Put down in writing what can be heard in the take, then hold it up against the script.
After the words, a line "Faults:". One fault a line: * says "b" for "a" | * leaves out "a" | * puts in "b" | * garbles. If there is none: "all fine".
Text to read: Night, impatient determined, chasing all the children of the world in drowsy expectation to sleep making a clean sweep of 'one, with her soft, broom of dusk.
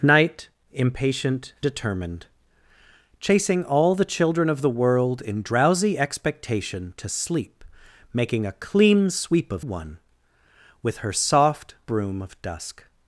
Night, impatient determined, chasing all the children of the world in drowsy expectation to sleep making a clean sweep of 'one, with her soft, broom of dusk.
Faults:
all fine